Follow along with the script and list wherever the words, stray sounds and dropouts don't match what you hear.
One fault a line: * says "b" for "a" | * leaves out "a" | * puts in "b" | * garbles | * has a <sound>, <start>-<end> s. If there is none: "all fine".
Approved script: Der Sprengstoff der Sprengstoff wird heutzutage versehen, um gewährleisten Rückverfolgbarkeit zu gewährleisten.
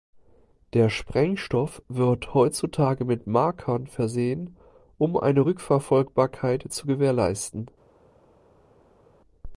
* says "wird heutzutage mit Markern" for "der Sprengstoff wird heutzutage"
* says "eine" for "gewährleisten"